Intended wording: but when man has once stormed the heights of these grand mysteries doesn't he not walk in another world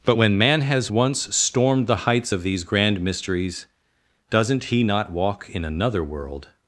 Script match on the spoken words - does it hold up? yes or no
yes